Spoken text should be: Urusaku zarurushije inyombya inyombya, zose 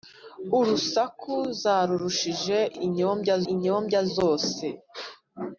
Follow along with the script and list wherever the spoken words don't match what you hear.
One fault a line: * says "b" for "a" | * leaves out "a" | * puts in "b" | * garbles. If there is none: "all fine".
all fine